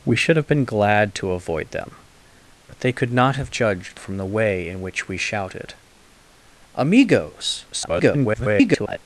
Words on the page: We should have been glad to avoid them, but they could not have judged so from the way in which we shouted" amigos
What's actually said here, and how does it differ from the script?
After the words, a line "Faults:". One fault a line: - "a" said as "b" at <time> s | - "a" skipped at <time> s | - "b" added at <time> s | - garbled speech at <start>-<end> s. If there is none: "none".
We should have been glad to avoid them, but they could not have judged from the way in which we shouted" amigos [garbled]
Faults:
- "so" skipped at 4.0 s
- garbled speech at 7.7-9.0 s